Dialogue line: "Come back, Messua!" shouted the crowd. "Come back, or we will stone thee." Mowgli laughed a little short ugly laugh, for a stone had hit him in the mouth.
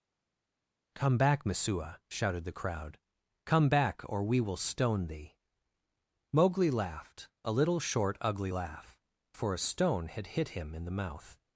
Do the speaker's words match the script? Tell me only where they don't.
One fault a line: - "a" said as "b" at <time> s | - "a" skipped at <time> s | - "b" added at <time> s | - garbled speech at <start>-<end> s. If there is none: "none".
none